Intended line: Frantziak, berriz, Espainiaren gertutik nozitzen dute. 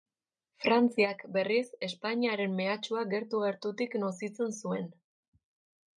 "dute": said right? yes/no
no